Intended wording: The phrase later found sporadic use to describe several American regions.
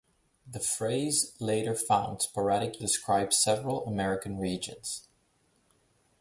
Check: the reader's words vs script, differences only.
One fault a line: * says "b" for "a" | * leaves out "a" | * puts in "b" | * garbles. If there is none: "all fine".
* leaves out "use to"